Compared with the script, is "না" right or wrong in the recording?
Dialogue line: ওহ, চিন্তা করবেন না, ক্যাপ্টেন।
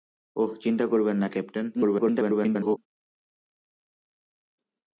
right